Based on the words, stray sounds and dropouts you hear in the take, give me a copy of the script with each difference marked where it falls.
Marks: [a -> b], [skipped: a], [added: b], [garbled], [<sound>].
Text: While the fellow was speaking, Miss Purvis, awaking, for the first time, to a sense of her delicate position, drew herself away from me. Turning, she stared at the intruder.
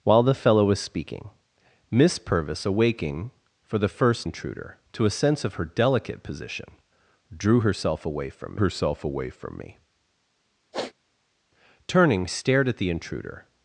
While the fellow was speaking, Miss Purvis, awaking, for the first [time, -> intruder] to a sense of her delicate position, drew herself away from [added: herself away from] me. [sniff] Turning, [skipped: she] stared at the intruder.